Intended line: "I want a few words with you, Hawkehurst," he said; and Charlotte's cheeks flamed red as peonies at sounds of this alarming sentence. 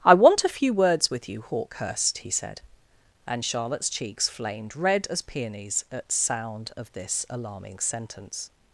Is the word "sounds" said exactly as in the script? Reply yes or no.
no